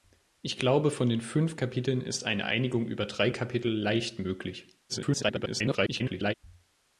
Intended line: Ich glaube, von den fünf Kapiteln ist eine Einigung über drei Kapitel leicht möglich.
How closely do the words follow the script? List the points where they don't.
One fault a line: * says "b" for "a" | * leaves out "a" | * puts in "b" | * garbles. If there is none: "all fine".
* garbles